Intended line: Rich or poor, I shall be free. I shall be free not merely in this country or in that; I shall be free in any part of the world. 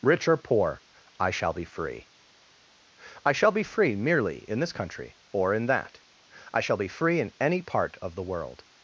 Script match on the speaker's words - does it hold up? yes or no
no